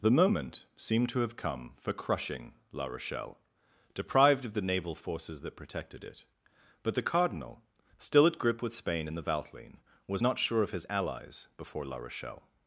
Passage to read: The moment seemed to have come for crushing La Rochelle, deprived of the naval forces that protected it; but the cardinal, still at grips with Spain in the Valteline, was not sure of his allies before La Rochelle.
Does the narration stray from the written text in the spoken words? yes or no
yes